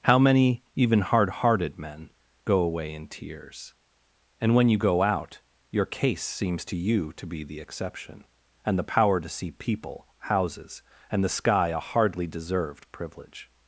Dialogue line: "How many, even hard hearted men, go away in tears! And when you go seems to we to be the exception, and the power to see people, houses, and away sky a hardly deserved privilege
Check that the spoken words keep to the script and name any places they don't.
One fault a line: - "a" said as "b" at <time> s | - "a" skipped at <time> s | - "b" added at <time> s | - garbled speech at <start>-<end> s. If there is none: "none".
- "out your case" added at 5.0 s
- "we" said as "you" at 6.8 s
- "away" said as "the" at 11.2 s